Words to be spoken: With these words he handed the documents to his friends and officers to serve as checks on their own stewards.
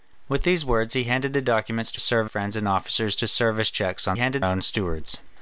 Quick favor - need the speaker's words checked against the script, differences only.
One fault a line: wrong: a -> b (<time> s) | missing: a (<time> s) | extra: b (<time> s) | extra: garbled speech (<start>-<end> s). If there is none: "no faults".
wrong: his -> serve (2.0 s)
wrong: their -> handed (4.1 s)